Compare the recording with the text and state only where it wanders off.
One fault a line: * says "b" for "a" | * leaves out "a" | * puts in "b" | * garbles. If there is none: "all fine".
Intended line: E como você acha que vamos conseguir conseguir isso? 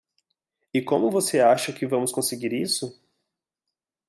* leaves out "conseguir"